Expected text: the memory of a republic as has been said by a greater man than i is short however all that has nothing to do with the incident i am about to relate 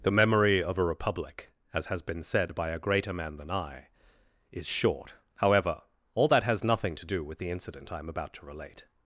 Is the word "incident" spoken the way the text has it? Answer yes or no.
yes